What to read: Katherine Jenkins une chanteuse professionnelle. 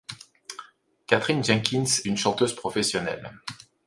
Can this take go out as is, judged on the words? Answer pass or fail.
pass